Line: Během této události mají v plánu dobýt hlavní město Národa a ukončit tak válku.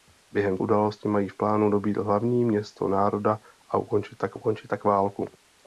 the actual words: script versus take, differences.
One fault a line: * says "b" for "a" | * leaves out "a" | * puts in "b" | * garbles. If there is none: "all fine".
* leaves out "této"
* puts in "ukončit tak"